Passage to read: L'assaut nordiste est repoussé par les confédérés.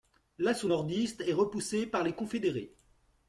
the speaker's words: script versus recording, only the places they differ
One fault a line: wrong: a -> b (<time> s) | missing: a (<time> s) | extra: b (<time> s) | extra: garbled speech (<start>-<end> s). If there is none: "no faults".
no faults